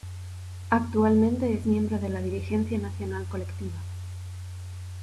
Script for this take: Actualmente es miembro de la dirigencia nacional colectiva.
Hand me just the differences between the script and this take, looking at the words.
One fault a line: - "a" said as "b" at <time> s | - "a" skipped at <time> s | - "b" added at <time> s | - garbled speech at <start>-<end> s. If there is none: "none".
none